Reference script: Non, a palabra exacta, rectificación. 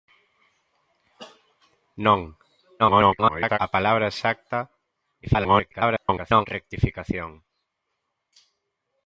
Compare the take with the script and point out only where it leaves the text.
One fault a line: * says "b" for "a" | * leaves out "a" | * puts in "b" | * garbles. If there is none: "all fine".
* garbles
* garbles